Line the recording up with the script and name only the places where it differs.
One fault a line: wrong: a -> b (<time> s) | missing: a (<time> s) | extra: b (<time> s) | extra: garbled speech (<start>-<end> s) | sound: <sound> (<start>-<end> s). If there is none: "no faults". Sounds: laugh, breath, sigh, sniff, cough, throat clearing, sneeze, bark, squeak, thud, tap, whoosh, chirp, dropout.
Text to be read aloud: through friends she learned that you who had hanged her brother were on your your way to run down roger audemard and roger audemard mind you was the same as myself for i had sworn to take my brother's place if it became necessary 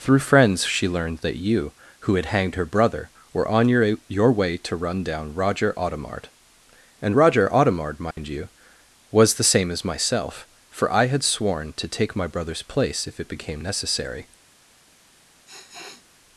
sound: dropout (8.1-8.2 s)
sound: sniff (15.5-16.1 s)